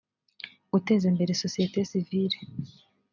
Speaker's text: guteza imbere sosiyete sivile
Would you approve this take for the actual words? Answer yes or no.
yes